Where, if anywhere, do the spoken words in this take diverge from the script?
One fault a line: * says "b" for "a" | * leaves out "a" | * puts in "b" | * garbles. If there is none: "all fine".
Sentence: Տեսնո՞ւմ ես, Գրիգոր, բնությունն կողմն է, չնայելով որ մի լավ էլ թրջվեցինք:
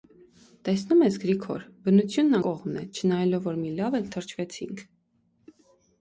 all fine